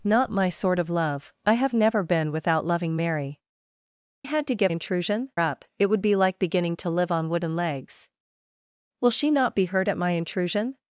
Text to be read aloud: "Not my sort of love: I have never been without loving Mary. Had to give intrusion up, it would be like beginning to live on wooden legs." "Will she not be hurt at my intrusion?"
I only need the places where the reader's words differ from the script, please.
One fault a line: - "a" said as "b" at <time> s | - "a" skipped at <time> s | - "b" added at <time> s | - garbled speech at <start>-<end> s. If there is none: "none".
none